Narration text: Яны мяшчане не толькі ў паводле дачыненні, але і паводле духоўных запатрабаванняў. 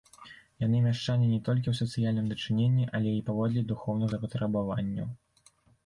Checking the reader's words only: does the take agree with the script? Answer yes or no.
no